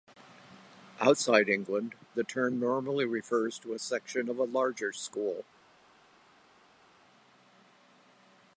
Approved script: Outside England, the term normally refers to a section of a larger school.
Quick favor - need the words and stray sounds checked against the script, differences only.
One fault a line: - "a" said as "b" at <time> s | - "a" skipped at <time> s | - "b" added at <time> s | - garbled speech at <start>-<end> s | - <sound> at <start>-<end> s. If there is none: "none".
none